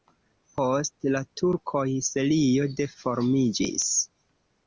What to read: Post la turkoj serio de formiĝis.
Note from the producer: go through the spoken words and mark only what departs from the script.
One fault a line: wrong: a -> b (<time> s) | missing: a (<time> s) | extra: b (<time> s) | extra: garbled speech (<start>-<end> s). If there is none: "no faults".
no faults